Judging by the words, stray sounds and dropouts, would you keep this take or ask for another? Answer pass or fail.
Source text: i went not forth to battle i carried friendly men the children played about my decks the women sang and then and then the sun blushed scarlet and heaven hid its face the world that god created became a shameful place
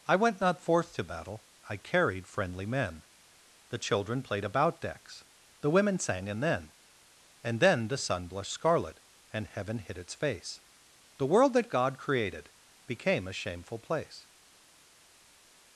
fail